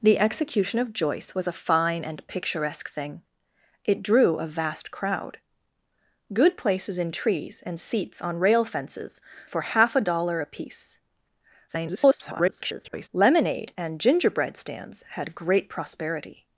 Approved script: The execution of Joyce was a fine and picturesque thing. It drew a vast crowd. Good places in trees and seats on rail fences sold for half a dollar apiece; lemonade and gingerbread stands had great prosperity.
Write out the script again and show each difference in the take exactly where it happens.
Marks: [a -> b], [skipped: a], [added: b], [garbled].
The execution of Joyce was a fine and picturesque thing. It drew a vast crowd. Good places in trees and seats on rail fences [skipped: sold] for half a dollar apiece; [garbled] lemonade and gingerbread stands had great prosperity.